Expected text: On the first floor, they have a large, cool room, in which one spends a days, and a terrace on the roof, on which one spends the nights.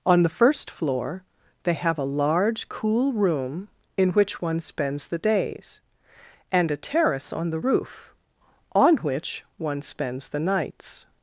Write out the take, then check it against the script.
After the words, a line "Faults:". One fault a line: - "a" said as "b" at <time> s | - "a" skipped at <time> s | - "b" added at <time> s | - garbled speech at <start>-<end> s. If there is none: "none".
On the first floor, they have a large, cool room, in which one spends the days, and a terrace on the roof, on which one spends the nights.
Faults:
- "a" said as "the" at 5.1 s